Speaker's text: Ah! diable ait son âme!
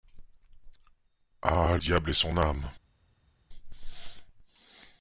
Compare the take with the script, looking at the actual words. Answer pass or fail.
pass